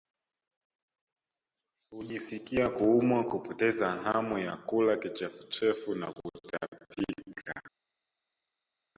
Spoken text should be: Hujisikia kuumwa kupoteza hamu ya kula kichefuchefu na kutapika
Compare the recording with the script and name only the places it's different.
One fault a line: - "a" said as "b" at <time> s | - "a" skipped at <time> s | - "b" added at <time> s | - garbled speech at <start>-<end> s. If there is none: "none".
none